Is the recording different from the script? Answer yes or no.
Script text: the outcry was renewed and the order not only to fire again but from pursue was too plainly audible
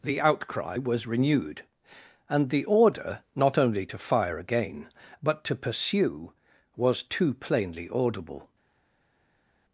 yes